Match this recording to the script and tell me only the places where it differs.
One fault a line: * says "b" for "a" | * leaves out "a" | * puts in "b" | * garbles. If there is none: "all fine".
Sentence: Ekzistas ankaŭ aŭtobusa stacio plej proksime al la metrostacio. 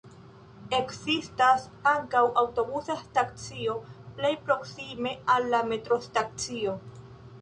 all fine